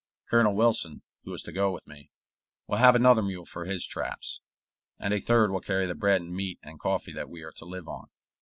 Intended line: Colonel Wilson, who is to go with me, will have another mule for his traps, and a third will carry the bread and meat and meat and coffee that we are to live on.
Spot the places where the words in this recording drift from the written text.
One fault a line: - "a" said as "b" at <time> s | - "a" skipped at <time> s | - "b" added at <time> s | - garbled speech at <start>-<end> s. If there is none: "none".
- "meat and" skipped at 6.8 s